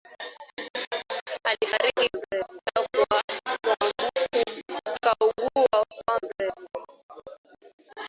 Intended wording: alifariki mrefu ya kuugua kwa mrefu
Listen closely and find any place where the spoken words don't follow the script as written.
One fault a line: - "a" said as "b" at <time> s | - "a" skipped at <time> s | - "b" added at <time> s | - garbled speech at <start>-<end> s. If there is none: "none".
none